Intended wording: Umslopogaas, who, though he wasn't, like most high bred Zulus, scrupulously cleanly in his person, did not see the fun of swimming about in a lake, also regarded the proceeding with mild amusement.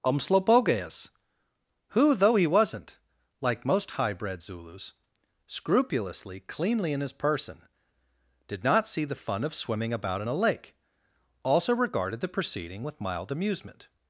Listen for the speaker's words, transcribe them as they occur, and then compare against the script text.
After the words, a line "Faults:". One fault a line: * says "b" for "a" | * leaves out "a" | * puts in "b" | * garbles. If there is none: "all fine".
Umslopogaas, who, though he wasn't, like most high bred Zulus, scrupulously cleanly in his person, did not see the fun of swimming about in a lake, also regarded the proceeding with mild amusement.
Faults:
all fine